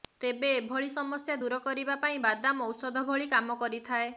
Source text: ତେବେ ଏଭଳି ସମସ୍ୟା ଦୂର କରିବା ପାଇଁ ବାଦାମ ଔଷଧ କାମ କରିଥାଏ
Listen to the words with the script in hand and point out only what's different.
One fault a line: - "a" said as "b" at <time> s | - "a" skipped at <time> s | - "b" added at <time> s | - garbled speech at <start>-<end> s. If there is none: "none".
- "ଭଳି" added at 3.1 s